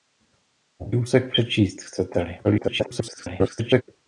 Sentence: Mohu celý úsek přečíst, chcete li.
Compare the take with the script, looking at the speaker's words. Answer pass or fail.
fail